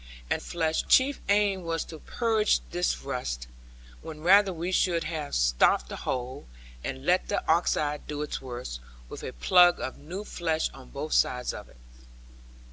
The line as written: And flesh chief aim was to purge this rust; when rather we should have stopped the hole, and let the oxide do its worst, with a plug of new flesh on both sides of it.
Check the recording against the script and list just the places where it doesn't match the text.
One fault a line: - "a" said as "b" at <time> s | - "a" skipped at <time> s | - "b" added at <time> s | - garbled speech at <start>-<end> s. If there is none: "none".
none